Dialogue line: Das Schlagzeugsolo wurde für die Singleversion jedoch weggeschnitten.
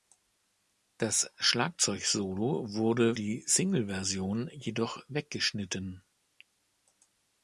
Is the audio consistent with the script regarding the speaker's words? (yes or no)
no